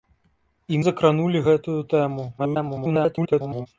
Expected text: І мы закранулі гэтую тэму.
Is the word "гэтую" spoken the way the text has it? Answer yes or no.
yes